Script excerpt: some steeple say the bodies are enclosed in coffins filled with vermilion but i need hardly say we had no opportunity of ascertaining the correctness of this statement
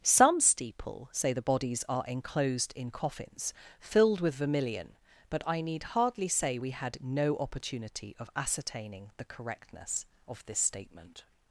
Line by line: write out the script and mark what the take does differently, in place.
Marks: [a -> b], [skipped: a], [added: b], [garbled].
some steeple say the bodies are enclosed in coffins filled with vermilion but i need hardly say we had no opportunity of ascertaining the correctness of this statement